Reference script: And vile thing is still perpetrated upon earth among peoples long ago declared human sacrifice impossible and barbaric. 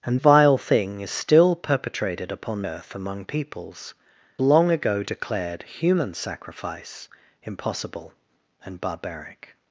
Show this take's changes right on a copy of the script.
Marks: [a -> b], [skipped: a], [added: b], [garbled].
And vile thing is still perpetrated upon earth among peoples long ago declared human sacrifice impossible and barbaric.